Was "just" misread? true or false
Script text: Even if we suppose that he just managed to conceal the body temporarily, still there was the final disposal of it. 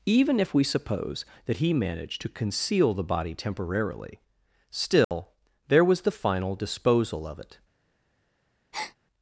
true